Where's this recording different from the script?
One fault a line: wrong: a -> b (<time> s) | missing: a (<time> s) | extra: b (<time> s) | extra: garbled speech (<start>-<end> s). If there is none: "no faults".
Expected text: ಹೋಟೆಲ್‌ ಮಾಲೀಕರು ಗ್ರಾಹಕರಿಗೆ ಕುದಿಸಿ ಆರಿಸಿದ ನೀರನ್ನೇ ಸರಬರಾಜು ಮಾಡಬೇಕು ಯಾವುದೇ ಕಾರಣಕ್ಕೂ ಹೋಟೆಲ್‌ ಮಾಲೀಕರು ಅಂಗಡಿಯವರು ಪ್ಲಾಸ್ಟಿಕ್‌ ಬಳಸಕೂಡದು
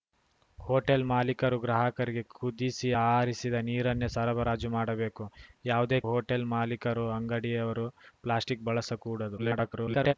missing: ಕಾರಣಕ್ಕೂ (6.0 s)
extra: garbled speech (9.4-10.1 s)